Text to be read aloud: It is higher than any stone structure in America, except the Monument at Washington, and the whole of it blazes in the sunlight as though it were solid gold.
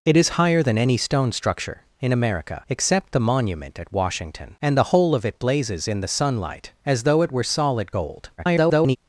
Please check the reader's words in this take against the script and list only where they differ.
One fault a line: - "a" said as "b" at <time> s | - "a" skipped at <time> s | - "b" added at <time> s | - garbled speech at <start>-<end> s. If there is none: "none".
- garbled speech at 8.4-9.0 s